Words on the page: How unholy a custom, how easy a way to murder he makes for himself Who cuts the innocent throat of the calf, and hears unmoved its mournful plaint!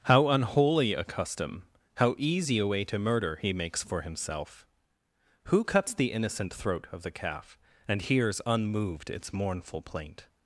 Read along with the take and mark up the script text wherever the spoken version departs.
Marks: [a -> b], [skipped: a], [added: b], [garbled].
How unholy a custom, how easy a way to murder he makes for himself Who cuts the innocent throat of the calf, and hears unmoved its mournful plaint!